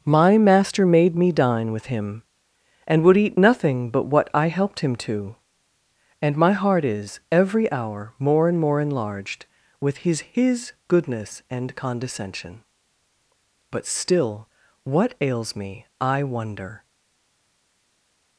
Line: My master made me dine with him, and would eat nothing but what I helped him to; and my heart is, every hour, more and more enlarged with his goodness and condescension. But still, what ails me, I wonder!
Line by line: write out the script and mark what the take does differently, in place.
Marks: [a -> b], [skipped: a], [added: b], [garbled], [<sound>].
My master made me dine with him, and would eat nothing but what I helped him to; and my heart is, every hour, more and more enlarged with his [added: his] goodness and condescension. But still, what ails me, I wonder!